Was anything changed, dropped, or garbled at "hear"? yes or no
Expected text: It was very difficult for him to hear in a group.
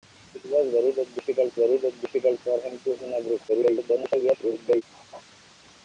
yes